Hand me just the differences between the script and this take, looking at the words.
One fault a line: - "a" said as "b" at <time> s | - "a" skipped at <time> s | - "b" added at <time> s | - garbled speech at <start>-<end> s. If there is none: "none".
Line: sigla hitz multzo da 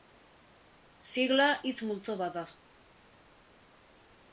- "bat" added at 2.3 s